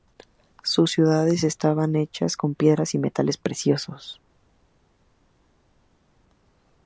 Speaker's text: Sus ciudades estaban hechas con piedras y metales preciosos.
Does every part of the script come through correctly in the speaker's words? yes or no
yes